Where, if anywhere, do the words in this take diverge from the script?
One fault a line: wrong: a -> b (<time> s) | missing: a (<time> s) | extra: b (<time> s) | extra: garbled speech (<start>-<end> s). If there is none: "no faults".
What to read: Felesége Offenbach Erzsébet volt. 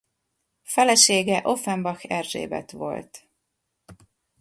no faults